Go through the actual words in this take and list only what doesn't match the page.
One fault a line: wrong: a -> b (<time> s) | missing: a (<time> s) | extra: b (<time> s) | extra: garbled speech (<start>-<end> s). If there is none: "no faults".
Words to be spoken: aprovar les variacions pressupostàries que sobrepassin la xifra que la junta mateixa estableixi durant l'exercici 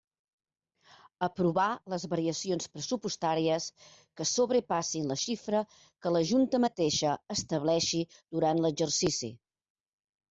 no faults